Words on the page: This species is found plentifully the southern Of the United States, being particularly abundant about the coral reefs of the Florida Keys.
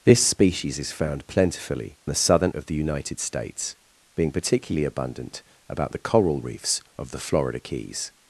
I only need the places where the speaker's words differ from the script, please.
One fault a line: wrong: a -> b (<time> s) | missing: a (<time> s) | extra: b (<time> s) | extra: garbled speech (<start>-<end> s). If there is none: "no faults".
no faults